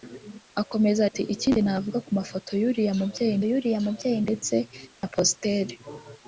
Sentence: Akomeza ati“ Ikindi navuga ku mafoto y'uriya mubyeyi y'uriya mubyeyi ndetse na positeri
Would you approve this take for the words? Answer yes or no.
yes